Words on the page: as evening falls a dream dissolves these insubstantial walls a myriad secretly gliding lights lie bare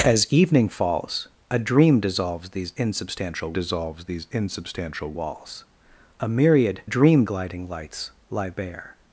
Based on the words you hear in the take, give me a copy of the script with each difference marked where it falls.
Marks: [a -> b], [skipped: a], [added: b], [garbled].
as evening falls a dream dissolves these insubstantial [added: dissolves these insubstantial] walls a myriad [secretly -> dream] gliding lights lie bare